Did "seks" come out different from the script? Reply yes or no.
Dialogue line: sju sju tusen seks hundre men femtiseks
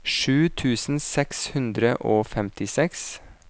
no